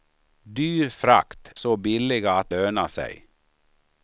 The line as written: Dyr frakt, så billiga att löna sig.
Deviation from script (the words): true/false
false